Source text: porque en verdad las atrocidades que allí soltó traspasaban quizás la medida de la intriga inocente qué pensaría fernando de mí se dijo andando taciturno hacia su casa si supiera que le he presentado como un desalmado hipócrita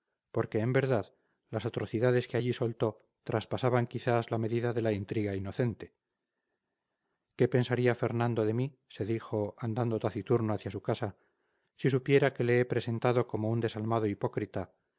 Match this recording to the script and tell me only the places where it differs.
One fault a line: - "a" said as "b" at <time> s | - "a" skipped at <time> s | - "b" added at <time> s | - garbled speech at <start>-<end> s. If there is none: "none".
none